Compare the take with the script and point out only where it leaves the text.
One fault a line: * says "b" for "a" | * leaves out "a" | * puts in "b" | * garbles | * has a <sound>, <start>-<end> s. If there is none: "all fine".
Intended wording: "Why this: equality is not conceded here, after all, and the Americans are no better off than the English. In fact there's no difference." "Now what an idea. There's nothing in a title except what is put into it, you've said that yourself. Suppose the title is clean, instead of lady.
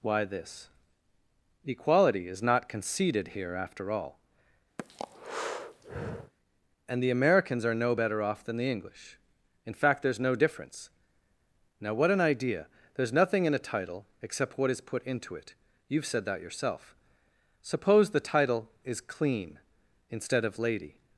* has a breath, 4.8-6.3 s